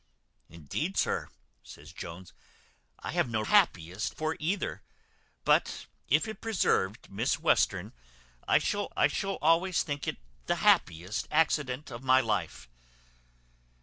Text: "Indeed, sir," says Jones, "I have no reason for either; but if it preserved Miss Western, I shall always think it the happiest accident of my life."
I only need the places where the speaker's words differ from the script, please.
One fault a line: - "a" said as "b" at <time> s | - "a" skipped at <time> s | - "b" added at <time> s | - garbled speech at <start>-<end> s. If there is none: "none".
- "reason" said as "happiest" at 3.4 s
- "I shall" added at 8.9 s